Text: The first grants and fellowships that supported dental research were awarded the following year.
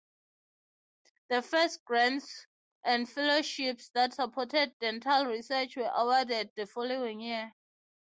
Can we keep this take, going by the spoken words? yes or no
yes